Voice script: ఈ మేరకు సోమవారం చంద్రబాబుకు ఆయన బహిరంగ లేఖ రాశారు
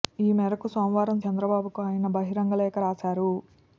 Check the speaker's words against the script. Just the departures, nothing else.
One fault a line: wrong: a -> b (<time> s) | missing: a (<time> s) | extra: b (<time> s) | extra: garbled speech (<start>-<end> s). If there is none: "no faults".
no faults